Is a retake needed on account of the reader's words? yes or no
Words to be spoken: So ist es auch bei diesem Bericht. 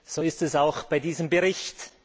no